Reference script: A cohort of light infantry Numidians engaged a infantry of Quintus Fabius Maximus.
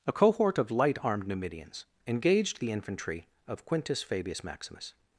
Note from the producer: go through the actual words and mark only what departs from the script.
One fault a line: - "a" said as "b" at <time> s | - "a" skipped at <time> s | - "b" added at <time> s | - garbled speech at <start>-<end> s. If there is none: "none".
- "infantry" said as "armed" at 1.0 s
- "a" said as "the" at 2.6 s